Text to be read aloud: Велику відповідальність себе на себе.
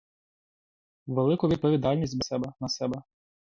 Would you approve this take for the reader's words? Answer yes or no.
yes